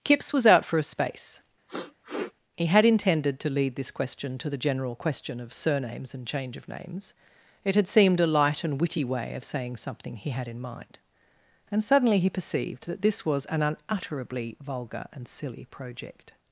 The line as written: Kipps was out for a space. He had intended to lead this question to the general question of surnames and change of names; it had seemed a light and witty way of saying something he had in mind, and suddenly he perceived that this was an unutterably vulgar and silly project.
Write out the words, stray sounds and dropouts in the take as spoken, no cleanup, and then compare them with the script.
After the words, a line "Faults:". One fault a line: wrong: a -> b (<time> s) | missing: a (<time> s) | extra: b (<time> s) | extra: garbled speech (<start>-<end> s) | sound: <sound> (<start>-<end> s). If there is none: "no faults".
Kipps was out for a space. He had intended to lead this question to the general question of surnames and change of names; it had seemed a light and witty way of saying something he had in mind, and suddenly he perceived that this was an unutterably vulgar and silly project.
Faults:
sound: sniff (1.7-2.3 s)